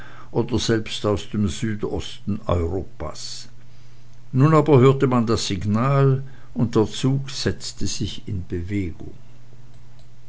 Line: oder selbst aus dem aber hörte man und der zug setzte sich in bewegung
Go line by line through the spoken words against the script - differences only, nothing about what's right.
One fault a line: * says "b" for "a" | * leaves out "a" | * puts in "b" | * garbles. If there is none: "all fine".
* puts in "südosten europas nun"
* puts in "das signal"